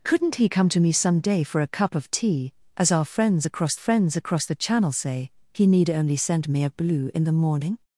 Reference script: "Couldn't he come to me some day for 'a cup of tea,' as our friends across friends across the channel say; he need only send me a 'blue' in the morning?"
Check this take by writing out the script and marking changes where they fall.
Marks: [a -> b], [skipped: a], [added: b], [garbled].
"Couldn't he come to me some day for 'a cup of tea,' as our friends across friends across the channel say; he need only send me a 'blue' in the morning?"